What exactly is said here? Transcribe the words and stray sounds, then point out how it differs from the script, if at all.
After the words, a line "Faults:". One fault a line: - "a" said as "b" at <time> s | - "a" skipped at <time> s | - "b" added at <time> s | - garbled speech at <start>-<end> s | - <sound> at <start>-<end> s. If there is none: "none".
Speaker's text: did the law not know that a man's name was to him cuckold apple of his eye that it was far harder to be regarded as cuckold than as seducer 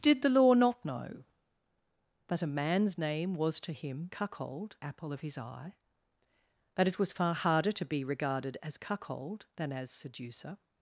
did the law not know that a man's name was to him cuckold apple of his eye that it was far harder to be regarded as cuckold than as seducer
Faults:
none